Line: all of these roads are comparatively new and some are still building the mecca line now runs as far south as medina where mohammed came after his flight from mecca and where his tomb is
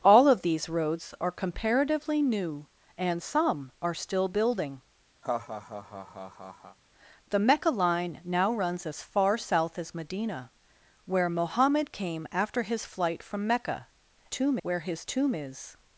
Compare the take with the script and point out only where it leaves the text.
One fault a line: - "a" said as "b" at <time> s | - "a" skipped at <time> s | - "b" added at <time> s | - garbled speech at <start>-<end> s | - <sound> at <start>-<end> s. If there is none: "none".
- laugh at 5.2-6.8 s
- "and" said as "tomb" at 14.3 s